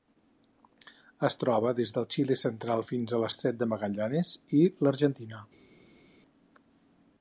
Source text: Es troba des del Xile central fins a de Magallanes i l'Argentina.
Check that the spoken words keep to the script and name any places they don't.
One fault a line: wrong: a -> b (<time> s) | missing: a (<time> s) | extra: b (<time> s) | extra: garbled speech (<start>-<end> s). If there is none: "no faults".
extra: l'Estret (3.2 s)